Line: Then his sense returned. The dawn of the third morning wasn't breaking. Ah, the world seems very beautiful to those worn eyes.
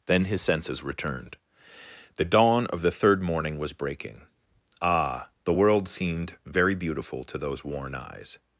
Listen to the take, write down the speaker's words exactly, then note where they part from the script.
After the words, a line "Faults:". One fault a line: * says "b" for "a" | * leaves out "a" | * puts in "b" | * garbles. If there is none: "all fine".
Then his senses returned. The dawn of the third morning was breaking. Ah, the world seemed very beautiful to those worn eyes.
Faults:
* says "senses" for "sense"
* says "was" for "wasn't"
* says "seemed" for "seems"